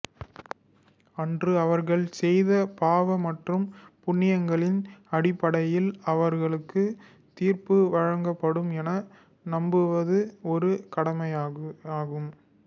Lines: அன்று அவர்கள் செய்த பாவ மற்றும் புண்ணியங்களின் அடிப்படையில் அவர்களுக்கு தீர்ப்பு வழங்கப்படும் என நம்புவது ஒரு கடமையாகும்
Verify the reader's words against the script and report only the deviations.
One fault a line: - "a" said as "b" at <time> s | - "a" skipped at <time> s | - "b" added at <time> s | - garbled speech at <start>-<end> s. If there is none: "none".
none